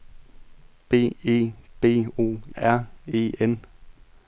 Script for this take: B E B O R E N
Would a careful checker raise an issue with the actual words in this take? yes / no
no